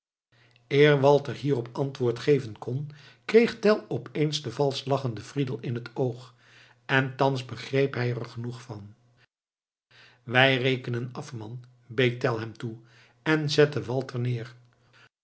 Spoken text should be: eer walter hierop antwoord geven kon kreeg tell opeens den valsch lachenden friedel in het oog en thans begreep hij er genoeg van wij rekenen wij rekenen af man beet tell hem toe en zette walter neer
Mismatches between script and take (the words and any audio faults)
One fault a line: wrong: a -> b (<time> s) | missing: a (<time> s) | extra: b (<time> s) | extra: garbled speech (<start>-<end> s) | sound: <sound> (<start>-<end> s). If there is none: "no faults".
missing: wij rekenen (11.1 s)